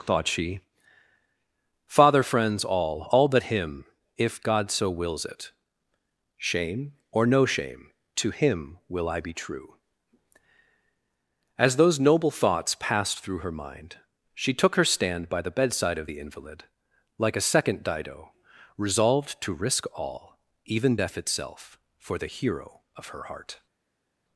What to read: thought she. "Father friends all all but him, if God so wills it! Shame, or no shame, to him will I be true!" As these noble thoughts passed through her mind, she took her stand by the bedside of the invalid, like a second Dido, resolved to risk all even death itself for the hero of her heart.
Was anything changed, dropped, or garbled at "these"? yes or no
yes